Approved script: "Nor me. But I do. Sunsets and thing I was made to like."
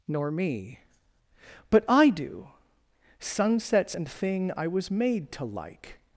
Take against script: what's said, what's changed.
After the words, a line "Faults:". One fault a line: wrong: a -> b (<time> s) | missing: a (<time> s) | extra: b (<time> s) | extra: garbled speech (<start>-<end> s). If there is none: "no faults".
"Nor me. But I do. Sunsets and thing I was made to like."
Faults:
no faults